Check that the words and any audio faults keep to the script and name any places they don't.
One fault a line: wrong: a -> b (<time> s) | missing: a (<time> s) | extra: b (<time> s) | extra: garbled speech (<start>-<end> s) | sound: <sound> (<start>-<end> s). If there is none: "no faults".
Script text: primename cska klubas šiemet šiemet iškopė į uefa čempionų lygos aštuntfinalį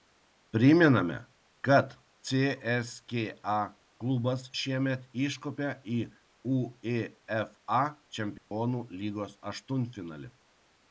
extra: kad (1.7 s)
missing: šiemet (5.1 s)
sound: dropout (8.4-8.5 s)